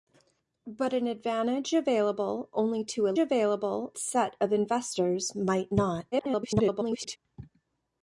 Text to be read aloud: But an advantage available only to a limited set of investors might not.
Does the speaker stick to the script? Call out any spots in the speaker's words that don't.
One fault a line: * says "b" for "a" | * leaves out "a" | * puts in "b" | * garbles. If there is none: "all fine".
* says "available" for "limited"
* garbles